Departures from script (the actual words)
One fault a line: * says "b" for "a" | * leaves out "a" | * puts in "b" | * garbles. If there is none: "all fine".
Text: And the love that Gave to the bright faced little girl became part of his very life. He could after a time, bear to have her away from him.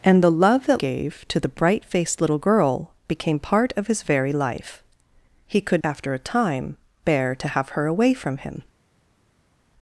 all fine